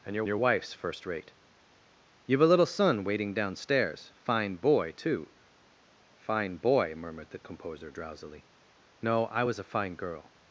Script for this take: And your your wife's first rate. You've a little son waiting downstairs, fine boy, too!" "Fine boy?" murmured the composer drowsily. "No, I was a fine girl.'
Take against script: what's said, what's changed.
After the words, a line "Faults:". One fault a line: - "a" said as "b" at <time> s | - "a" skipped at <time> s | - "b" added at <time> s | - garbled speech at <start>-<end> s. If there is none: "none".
And your your wife's first rate. You've a little son waiting downstairs, fine boy, too!" "Fine boy?" murmured the composer drowsily. "No, I was a fine girl.'
Faults:
none